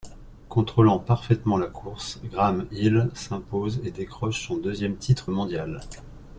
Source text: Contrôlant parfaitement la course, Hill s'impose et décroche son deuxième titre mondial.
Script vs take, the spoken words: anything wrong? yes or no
yes